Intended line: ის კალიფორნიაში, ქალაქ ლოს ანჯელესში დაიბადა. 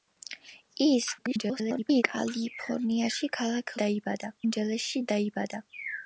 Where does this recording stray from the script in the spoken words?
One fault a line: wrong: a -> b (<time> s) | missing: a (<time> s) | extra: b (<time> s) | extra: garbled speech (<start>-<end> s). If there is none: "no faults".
extra: garbled speech (1.2-2.0 s)
wrong: ლოს -> დაიბადა (3.8 s)